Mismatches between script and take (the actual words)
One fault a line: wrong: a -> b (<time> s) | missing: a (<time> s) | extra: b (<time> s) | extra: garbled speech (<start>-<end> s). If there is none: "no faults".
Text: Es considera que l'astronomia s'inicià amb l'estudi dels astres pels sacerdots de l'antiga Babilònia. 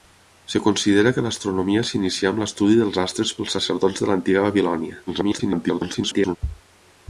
extra: garbled speech (5.1-6.4 s)